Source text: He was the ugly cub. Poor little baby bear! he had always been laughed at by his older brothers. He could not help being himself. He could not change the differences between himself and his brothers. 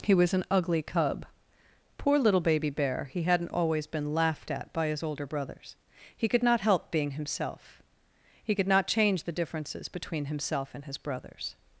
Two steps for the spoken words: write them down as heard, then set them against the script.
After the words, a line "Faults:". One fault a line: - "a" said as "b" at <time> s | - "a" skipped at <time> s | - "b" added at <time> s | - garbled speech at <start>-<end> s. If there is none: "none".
He was an ugly cub. Poor little baby bear! he hadn't always been laughed at by his older brothers. He could not help being himself. He could not change the differences between himself and his brothers.
Faults:
- "the" said as "an" at 0.3 s
- "had" said as "hadn't" at 3.2 s